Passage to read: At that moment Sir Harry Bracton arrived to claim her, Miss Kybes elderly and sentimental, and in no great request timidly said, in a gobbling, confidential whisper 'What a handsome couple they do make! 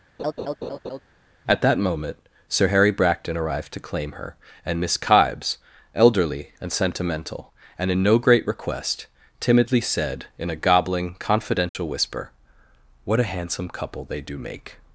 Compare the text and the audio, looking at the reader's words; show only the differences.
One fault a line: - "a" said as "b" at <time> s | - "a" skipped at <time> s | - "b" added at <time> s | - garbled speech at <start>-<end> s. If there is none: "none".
- "and" added at 4.6 s